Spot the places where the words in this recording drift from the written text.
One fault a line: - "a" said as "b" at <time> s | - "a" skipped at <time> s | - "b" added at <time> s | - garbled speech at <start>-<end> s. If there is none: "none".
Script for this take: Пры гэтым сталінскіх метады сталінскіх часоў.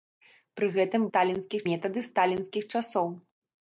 none